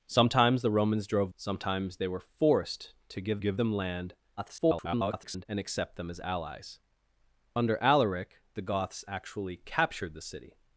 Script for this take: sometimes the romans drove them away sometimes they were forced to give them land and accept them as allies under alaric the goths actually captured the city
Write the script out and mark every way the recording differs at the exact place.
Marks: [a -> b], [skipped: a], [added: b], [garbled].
sometimes the romans drove [skipped: them away] sometimes they were forced to give [added: give] them land [garbled] and accept them as allies under alaric the goths actually captured the city